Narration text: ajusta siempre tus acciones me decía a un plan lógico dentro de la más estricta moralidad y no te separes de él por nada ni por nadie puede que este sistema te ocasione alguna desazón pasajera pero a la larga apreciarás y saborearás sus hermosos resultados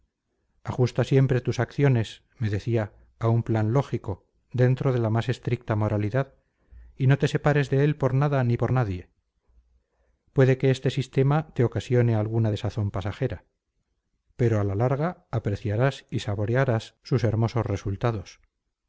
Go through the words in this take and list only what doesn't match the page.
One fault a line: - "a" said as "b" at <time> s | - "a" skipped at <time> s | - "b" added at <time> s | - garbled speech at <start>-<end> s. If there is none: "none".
none